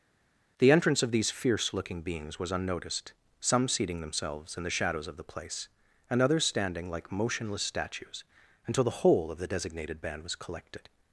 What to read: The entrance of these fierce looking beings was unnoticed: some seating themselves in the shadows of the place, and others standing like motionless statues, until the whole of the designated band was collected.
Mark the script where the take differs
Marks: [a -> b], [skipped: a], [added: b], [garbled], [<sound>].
The entrance of these fierce looking beings was unnoticed: some seating themselves in the shadows of the place, and others standing like motionless statues, until the whole of the designated band was collected.